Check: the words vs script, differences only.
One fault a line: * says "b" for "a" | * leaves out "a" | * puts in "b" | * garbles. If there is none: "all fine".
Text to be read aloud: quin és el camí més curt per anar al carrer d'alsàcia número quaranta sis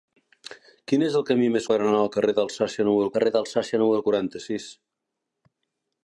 * leaves out "curt"
* puts in "carrer d'alsàcia número"